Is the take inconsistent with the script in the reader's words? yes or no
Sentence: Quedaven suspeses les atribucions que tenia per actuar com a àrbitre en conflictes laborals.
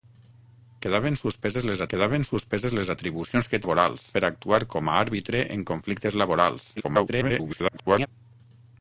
yes